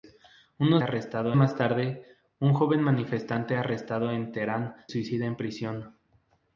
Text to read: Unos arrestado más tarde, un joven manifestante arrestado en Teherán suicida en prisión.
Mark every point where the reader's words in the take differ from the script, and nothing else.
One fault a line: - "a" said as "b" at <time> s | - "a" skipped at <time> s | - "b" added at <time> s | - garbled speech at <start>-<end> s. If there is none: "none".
none